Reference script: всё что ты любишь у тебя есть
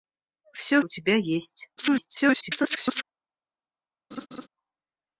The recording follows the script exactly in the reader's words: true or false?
false